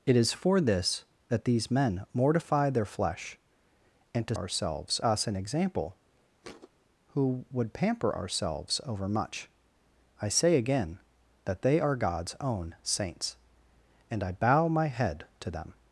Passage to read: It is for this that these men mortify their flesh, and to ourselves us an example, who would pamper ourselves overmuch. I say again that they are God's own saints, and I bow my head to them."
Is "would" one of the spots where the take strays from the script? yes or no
no